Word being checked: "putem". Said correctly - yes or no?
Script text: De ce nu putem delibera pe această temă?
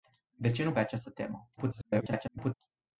no